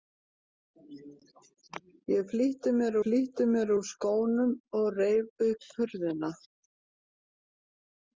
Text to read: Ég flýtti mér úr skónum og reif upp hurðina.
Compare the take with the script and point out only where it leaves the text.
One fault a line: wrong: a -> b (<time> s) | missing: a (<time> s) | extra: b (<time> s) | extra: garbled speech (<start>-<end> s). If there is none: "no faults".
extra: flýtti mér (3.0 s)